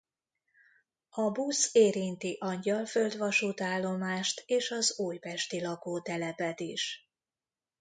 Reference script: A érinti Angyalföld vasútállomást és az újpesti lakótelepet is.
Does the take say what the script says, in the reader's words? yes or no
no